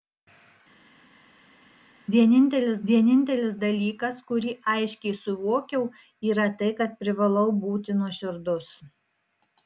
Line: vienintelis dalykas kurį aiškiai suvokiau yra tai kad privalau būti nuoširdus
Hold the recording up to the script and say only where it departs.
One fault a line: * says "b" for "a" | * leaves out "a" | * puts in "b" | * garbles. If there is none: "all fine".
* puts in "vienintelis"